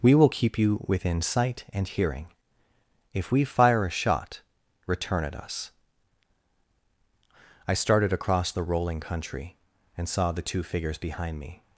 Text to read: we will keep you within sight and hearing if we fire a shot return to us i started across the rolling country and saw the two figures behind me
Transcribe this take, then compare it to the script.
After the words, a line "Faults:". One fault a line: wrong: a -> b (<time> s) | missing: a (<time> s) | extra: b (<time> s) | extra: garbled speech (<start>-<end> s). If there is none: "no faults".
we will keep you within sight and hearing if we fire a shot return at us i started across the rolling country and saw the two figures behind me
Faults:
wrong: to -> at (5.2 s)